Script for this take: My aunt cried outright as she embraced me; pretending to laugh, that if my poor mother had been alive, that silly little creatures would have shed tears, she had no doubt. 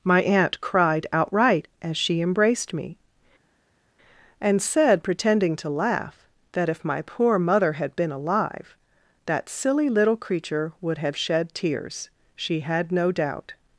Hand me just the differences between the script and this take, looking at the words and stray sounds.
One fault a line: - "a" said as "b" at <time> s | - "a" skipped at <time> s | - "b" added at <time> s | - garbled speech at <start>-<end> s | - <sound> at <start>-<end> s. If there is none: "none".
- "and said" added at 4.4 s
- "creatures" said as "creature" at 10.2 s